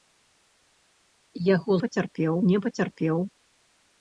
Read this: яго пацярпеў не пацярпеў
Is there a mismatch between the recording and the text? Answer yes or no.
no